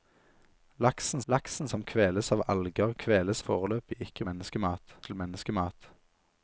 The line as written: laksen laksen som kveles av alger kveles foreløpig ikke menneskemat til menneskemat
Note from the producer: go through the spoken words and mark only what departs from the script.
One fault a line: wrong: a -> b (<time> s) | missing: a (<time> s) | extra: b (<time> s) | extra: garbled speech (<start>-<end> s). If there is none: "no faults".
no faults